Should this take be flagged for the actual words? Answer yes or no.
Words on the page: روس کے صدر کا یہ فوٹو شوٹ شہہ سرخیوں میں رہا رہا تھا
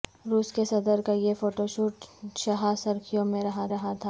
no